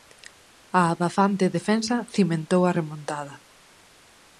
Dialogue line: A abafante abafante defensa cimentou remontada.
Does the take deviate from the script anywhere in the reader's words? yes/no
yes